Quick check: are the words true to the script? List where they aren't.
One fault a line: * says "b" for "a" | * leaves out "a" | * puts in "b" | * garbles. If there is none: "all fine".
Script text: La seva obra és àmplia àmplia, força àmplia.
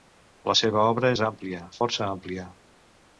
* leaves out "àmplia"